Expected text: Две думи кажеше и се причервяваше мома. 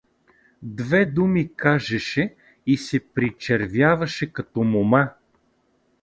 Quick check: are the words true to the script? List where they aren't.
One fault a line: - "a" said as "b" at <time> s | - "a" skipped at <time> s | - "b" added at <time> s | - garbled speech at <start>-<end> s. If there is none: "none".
- "като" added at 4.3 s